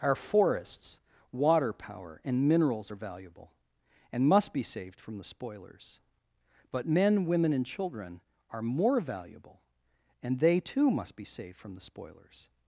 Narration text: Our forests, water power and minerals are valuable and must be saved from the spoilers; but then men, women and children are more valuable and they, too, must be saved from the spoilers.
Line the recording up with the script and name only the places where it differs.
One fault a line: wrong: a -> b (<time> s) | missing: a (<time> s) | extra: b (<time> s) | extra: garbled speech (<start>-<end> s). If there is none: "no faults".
missing: then (6.9 s)